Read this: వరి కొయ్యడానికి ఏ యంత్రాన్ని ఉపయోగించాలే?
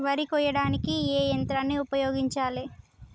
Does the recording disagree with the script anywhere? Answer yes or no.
no